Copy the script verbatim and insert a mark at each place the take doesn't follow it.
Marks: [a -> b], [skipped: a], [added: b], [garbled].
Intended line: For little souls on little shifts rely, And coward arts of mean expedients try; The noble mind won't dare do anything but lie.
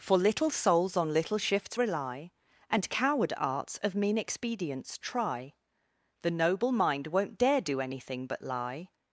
For little souls on little shifts rely, And coward arts of mean expedients try; The noble mind won't dare do anything but lie.